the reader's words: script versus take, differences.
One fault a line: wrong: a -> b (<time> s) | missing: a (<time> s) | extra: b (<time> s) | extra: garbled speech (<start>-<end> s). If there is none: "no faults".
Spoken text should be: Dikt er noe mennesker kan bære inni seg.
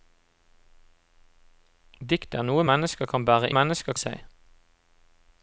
wrong: inni -> mennesker (3.5 s)